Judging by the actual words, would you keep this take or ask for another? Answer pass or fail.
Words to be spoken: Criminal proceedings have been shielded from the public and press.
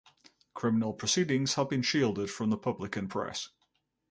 pass